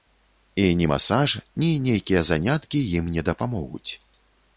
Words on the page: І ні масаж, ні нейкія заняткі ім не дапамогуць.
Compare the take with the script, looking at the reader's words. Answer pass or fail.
pass